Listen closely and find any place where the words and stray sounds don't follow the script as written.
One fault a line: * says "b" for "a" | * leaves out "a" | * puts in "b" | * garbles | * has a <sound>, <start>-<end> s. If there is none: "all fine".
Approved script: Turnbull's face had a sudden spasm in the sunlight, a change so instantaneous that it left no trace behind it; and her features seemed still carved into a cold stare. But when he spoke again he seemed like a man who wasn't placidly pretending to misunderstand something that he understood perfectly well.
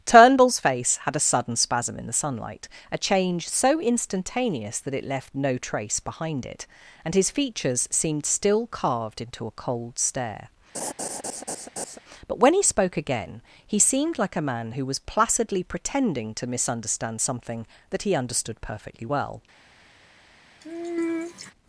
* says "his" for "her"
* has a laugh, 10.7-12.0 s
* says "was" for "wasn't"
* has a sigh, 20.6-21.5 s